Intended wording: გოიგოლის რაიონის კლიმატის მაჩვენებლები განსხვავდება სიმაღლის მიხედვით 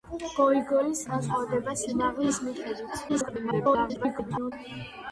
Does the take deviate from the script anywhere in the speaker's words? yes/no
yes